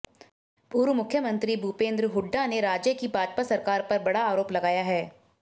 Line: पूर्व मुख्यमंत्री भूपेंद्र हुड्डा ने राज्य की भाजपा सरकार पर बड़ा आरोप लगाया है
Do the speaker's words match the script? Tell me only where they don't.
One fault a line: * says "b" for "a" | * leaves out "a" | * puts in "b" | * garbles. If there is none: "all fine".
all fine